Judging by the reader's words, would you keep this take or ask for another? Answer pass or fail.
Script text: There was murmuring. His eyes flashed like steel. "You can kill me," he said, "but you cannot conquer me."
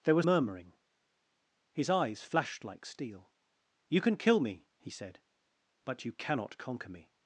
pass